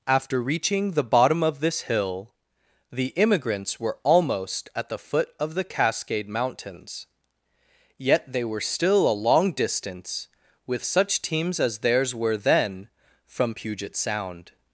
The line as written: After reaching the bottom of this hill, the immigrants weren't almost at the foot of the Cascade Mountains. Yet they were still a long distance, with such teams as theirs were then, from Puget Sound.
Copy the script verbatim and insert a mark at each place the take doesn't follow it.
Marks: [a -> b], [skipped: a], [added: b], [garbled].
After reaching the bottom of this hill, the immigrants [weren't -> were] almost at the foot of the Cascade Mountains. Yet they were still a long distance, with such teams as theirs were then, from Puget Sound.